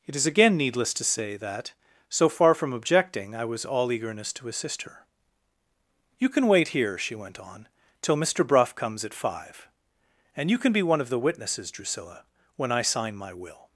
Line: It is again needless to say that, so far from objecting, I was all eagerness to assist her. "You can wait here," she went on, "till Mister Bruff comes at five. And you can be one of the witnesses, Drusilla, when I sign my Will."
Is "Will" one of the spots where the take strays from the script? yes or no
no